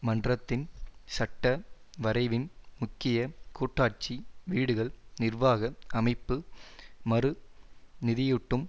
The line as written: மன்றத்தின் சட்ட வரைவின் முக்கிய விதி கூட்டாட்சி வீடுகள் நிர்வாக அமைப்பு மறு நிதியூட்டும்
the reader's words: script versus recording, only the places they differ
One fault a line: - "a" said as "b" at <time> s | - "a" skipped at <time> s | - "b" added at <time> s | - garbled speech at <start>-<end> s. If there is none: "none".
- "விதி" skipped at 3.2 s